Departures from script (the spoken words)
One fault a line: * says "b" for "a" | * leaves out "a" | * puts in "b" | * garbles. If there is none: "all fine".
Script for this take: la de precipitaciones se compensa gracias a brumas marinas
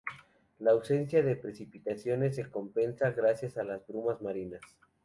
* puts in "ausencia"
* puts in "las"